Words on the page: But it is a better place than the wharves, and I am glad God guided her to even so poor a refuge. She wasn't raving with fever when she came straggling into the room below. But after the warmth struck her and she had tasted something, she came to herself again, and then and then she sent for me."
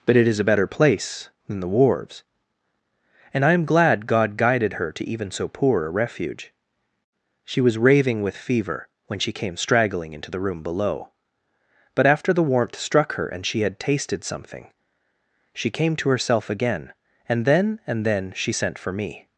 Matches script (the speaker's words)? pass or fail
fail